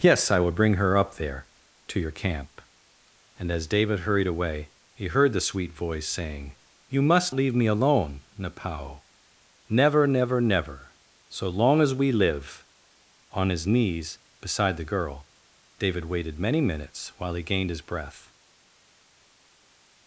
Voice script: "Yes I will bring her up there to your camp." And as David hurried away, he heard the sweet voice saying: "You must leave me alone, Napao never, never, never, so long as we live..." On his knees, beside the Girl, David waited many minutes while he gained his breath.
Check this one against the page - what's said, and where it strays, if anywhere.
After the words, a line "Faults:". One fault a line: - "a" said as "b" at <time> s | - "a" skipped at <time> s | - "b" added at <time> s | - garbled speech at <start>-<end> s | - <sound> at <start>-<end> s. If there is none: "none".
"Yes I will bring her up there to your camp." And as David hurried away, he heard the sweet voice saying: "You must leave me alone, Napao never, never, never, so long as we live..." On his knees, beside the Girl, David waited many minutes while he gained his breath.
Faults:
none